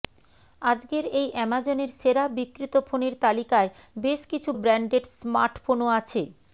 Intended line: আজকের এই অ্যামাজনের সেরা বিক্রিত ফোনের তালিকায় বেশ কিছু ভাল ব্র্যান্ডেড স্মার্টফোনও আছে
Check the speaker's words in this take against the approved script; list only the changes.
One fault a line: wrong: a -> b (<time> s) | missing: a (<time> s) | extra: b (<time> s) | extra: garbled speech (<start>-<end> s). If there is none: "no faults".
missing: ভাল (4.5 s)